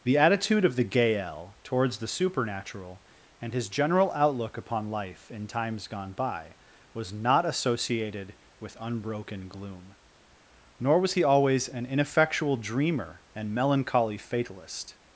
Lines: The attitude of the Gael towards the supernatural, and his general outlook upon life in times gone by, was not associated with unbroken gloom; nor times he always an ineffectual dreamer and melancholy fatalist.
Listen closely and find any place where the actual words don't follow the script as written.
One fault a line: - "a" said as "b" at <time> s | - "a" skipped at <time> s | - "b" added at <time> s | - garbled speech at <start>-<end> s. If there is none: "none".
- "times" said as "was" at 11.0 s